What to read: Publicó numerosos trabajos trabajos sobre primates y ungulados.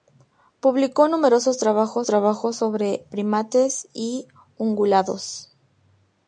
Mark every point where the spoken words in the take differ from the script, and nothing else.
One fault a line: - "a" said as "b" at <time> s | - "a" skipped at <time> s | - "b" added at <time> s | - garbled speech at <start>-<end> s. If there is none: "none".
none